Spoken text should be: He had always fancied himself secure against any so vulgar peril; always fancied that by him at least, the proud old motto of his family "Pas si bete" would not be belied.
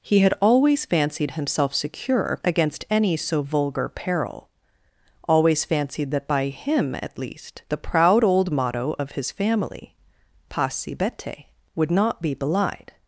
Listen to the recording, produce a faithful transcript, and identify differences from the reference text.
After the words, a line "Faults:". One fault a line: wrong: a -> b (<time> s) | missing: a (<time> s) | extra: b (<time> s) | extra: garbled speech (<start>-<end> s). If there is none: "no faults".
He had always fancied himself secure against any so vulgar peril; always fancied that by him at least, the proud old motto of his family "Pas si bete" would not be belied.
Faults:
no faults